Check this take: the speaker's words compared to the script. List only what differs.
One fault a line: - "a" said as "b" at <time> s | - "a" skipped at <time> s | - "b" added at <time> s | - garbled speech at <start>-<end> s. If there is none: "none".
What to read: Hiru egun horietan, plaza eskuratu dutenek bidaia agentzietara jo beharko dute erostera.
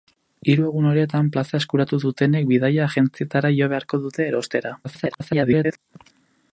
- garbled speech at 4.8-5.8 s